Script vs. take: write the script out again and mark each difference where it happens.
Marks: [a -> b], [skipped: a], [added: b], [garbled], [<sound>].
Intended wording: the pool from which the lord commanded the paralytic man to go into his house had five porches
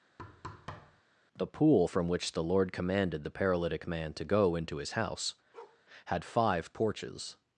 [thud] the pool from which the lord commanded the paralytic man to go into his house [bark] had five porches